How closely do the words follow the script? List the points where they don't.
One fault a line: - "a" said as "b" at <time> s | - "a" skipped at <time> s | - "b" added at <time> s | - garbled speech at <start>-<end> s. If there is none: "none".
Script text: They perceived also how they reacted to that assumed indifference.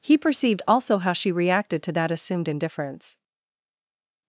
- "They" said as "He" at 0.0 s
- "they" said as "she" at 1.1 s